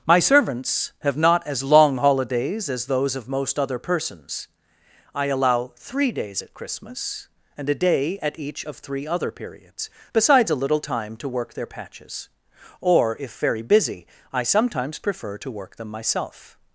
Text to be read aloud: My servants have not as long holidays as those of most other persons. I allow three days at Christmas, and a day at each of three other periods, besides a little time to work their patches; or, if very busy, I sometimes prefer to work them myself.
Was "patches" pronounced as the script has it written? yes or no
yes